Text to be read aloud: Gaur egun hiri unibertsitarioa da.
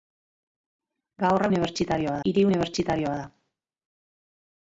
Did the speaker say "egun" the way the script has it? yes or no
no